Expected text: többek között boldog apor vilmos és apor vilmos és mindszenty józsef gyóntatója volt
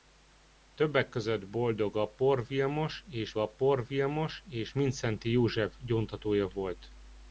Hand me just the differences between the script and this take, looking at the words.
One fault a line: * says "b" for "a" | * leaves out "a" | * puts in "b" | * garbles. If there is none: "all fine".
all fine